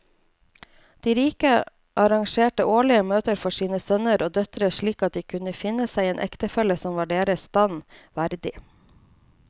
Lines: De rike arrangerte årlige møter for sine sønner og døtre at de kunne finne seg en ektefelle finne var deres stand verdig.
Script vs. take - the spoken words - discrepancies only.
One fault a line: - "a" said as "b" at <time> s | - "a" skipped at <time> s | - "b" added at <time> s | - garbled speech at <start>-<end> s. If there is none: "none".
- "slik" added at 4.8 s
- "finne" said as "som" at 6.8 s